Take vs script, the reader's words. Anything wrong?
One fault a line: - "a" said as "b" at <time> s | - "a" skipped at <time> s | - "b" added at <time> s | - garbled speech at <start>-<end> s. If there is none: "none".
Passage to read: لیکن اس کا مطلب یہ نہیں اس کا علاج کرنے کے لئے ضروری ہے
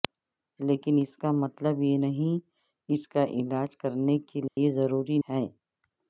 none